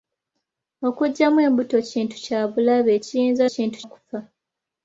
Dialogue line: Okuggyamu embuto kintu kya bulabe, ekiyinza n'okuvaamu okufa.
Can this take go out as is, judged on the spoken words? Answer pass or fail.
fail